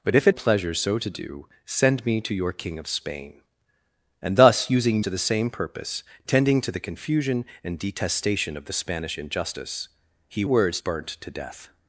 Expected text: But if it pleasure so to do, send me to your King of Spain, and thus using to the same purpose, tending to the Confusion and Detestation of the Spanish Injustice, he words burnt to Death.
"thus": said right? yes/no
yes